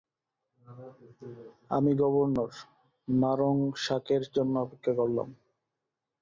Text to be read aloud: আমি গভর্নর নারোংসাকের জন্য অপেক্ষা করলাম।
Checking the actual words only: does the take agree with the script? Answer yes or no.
yes